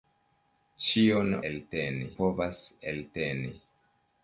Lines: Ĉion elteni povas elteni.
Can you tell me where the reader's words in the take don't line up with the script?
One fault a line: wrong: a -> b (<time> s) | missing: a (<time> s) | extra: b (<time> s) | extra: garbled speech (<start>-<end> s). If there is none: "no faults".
no faults